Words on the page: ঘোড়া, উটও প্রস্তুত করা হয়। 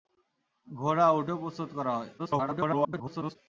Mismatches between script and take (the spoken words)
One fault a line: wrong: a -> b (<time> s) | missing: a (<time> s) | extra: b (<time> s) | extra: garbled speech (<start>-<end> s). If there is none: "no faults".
extra: garbled speech (2.2-3.4 s)